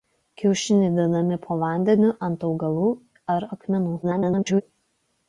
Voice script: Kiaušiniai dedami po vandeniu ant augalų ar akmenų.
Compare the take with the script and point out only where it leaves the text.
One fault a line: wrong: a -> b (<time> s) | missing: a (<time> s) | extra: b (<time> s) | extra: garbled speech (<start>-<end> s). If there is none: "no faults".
extra: garbled speech (4.0-4.6 s)